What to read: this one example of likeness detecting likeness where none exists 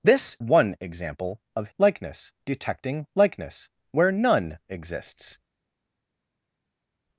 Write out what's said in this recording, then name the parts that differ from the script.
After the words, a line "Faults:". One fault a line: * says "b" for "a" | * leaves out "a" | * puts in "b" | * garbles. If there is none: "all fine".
this one example of likeness detecting likeness where none exists
Faults:
all fine